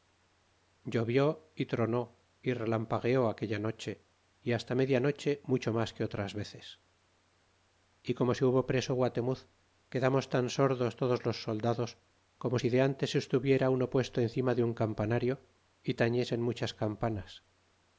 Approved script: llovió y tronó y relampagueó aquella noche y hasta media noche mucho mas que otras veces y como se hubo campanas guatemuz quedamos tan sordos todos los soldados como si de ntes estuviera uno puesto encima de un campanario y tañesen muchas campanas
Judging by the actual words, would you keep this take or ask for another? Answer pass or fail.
fail